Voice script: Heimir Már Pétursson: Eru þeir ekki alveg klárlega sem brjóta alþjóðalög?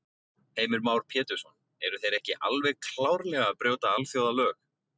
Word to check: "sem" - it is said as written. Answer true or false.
false